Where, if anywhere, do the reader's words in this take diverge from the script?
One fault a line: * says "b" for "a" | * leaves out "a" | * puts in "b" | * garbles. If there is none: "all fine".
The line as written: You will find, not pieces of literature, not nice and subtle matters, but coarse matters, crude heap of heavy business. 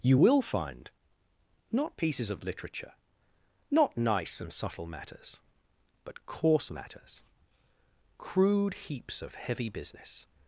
* says "heaps" for "heap"